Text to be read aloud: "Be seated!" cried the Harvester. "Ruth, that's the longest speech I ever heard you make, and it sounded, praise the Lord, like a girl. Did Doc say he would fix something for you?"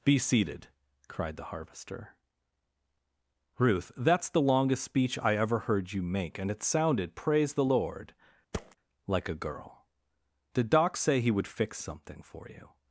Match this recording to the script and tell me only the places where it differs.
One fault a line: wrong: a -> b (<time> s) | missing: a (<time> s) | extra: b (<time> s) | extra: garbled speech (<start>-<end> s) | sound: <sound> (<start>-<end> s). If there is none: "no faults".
sound: thud (8.5-8.8 s)